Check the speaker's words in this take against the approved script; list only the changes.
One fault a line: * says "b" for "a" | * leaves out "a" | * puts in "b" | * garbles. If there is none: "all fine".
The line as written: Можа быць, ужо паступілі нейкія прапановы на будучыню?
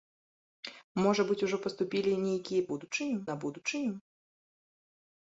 * says "будучыню" for "прапановы"